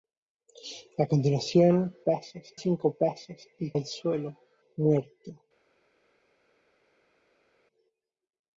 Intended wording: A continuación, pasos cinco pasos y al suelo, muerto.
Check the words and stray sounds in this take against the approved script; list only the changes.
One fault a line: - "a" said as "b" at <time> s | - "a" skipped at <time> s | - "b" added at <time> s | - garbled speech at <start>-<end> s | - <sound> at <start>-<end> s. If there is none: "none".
none